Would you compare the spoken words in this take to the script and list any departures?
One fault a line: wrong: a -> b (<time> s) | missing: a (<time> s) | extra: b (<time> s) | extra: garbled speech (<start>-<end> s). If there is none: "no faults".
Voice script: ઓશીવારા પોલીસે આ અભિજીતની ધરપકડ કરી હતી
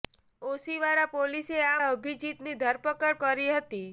no faults